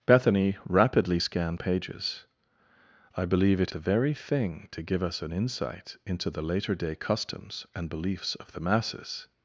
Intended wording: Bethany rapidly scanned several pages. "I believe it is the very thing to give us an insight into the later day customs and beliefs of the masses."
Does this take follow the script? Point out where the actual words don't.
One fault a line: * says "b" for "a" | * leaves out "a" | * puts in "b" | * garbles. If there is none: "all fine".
* leaves out "several"
* leaves out "is"